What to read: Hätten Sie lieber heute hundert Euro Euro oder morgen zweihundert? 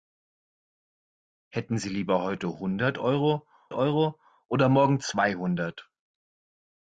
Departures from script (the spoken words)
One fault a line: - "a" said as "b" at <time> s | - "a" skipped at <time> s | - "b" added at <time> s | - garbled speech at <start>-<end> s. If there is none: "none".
none